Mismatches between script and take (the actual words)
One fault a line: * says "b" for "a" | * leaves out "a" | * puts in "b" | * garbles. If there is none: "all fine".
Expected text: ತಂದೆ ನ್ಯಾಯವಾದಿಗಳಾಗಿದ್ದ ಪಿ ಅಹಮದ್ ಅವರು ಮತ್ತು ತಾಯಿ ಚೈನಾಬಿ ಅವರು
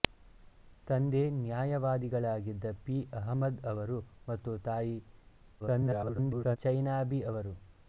* garbles